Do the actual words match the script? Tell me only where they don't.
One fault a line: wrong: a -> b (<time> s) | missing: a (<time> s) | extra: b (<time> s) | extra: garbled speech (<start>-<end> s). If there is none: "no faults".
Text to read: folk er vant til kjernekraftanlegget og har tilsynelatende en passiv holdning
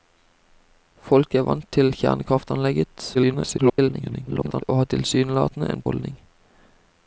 extra: garbled speech (3.1-4.6 s)
missing: passiv (5.9 s)